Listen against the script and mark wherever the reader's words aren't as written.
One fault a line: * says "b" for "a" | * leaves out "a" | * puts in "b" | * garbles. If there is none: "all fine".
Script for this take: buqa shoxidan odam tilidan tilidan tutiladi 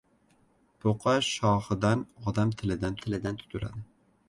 all fine